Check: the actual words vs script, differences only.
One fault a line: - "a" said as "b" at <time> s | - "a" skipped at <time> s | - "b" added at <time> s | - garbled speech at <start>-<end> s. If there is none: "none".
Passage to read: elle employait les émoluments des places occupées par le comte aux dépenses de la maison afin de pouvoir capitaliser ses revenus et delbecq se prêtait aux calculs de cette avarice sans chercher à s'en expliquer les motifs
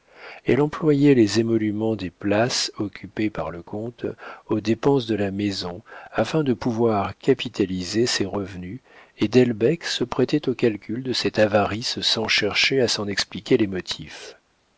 none